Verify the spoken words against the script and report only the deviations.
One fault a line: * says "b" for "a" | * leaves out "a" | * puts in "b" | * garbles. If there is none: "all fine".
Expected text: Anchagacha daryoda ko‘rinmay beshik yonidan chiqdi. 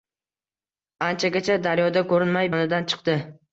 * leaves out "beshik"